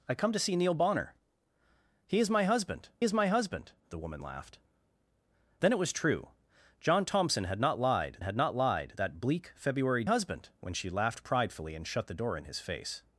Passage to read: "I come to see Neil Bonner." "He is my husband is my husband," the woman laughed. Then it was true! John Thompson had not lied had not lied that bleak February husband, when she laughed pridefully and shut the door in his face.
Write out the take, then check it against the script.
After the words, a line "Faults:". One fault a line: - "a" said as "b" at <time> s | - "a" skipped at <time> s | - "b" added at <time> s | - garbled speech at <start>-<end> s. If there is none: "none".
"I come to see Neil Bonner." "He is my husband is my husband," the woman laughed. Then it was true! John Thompson had not lied had not lied that bleak February husband, when she laughed pridefully and shut the door in his face.
Faults:
none